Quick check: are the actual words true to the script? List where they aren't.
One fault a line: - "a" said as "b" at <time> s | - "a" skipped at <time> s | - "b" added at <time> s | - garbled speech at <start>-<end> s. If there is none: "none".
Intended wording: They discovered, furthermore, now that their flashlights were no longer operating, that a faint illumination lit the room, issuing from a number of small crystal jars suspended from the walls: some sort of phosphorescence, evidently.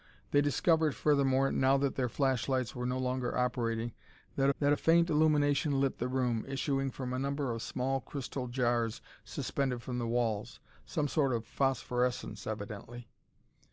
- "that" added at 4.6 s